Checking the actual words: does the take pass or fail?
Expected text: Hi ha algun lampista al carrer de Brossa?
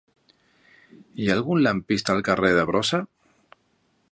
pass